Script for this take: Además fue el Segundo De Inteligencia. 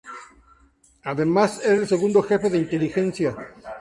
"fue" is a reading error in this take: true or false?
true